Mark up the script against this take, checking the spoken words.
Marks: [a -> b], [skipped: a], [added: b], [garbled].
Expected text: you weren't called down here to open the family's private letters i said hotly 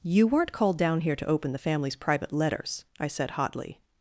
you weren't called down here to open the family's private letters i said hotly